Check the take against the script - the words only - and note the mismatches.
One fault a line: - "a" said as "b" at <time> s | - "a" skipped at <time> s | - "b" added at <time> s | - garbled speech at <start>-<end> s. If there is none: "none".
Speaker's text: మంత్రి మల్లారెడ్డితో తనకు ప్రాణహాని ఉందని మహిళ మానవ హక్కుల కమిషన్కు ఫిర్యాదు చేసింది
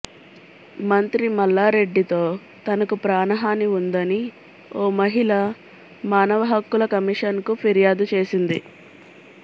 - "ఓ" added at 4.8 s